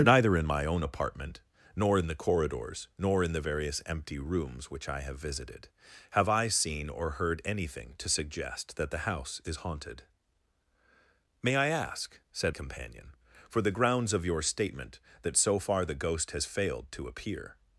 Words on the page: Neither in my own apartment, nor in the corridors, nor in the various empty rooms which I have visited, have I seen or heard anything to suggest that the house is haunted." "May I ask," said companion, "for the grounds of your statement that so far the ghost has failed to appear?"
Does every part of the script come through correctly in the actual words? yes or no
yes